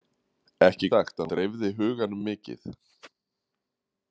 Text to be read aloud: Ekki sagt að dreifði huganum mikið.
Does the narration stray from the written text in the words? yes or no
no